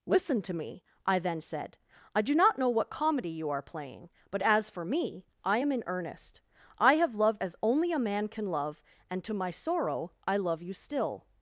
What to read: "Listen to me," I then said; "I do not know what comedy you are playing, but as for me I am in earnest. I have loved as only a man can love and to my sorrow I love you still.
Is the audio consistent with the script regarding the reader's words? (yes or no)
yes